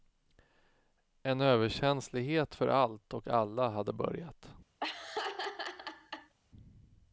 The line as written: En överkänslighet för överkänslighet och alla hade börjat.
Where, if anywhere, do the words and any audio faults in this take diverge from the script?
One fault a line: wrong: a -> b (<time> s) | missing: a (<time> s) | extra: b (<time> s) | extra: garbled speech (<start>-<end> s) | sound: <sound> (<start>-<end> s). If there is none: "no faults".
wrong: överkänslighet -> allt (2.7 s)
sound: laugh (4.8-6.3 s)